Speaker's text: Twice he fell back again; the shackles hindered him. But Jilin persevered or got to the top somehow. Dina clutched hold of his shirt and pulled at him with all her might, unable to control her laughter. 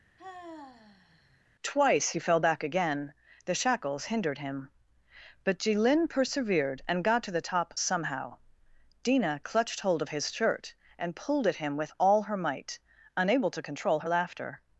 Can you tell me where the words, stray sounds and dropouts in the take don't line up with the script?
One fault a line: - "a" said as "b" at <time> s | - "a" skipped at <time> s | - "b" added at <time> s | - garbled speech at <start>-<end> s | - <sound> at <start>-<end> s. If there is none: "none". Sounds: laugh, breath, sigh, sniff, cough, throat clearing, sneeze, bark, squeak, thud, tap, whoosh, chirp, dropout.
- sigh at 0.2-1.4 s
- "or" said as "and" at 6.9 s